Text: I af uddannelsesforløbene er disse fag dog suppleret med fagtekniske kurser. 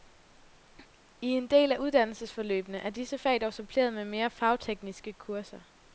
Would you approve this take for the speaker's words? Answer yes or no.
no